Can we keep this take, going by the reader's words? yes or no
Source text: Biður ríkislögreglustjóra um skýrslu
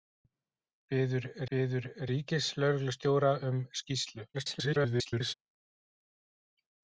no